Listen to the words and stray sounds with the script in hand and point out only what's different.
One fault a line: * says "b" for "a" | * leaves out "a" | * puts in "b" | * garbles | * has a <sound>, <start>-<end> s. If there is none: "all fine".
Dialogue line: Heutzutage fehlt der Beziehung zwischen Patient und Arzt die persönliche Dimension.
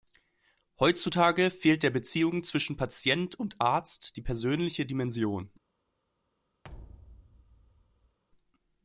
* has a thud, 6.6-8.2 s